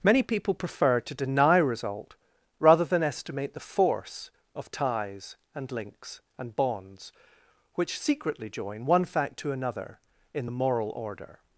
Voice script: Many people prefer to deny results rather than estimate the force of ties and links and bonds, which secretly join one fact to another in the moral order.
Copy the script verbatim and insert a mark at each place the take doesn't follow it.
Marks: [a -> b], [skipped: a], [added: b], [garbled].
Many people prefer to deny [results -> result] rather than estimate the force of ties and links and bonds, which secretly join one fact to another in the moral order.